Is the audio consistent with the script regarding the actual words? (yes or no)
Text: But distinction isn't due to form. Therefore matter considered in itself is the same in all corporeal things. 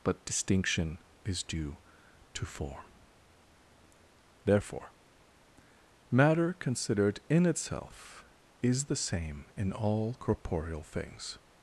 no